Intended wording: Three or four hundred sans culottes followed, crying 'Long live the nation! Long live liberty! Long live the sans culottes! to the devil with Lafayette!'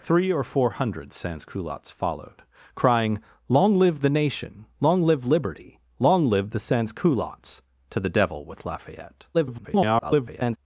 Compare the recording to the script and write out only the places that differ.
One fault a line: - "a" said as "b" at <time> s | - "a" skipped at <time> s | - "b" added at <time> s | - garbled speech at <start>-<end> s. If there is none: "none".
- garbled speech at 9.3-10.6 s